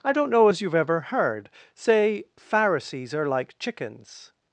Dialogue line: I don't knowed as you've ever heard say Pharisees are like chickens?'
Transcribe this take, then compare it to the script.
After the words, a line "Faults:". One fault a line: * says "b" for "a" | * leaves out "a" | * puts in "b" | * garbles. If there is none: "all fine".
I don't know as you've ever heard say Pharisees are like chickens?'
Faults:
* says "know" for "knowed"